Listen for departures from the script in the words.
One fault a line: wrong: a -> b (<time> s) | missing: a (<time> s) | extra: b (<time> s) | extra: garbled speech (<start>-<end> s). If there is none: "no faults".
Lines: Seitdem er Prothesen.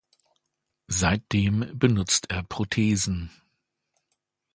extra: benutzt (1.8 s)